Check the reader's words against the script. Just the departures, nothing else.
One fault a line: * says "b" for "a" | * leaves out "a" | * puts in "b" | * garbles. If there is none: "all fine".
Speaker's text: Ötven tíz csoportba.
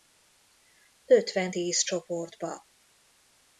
all fine